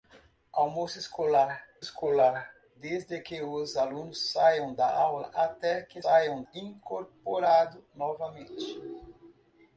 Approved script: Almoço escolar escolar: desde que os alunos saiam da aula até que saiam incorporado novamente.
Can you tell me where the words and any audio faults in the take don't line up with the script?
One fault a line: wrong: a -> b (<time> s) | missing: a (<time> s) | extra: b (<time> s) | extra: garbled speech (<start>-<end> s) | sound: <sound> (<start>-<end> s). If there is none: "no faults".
no faults